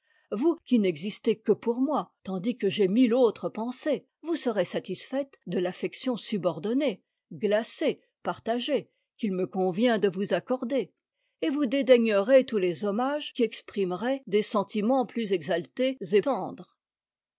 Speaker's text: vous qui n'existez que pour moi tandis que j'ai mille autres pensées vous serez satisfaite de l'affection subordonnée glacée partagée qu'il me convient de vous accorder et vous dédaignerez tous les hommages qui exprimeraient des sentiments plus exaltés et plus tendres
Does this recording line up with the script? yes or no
no